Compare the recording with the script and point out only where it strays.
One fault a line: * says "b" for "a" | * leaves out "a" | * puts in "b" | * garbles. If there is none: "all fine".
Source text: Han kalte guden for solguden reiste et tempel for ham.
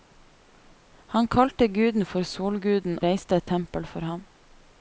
all fine